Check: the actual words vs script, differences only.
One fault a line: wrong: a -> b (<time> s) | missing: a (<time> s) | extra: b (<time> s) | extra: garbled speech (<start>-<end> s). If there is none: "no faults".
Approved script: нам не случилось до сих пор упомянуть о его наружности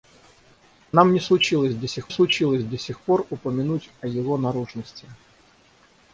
extra: случилось до сих (2.1 s)